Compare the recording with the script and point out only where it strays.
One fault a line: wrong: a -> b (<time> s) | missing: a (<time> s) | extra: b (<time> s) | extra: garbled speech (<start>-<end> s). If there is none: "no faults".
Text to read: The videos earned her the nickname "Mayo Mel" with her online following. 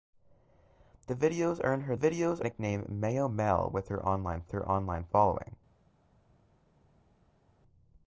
wrong: the -> videos (1.9 s)
extra: her online (4.5 s)